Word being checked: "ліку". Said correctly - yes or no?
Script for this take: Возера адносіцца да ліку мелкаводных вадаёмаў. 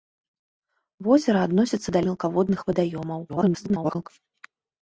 no